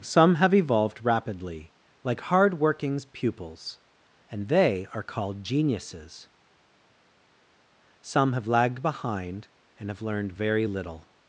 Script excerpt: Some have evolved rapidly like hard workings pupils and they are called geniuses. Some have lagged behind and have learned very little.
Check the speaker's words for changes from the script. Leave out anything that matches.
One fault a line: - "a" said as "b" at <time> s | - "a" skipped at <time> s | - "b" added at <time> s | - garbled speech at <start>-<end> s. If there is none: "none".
none